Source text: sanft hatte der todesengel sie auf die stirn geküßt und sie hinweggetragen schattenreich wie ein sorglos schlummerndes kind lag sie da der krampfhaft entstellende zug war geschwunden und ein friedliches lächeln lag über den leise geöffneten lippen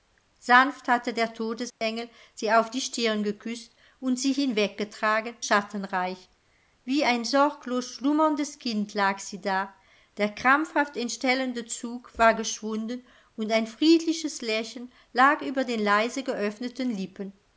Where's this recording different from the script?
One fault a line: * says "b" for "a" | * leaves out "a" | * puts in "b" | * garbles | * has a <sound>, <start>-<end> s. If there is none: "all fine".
* has a dropout, 1.7-1.8 s